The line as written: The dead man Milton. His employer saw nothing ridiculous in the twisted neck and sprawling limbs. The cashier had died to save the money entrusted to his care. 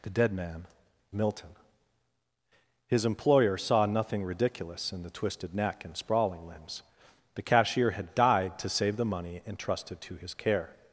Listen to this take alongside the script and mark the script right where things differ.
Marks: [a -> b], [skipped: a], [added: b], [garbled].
The dead man Milton. His employer saw nothing ridiculous in the twisted neck and sprawling limbs. The cashier had died to save the money entrusted to his care.